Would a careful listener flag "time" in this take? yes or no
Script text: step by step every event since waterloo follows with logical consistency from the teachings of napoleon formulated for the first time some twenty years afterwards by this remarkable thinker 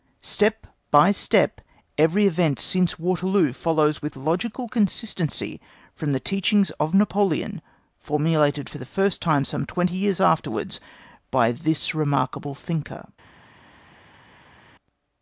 no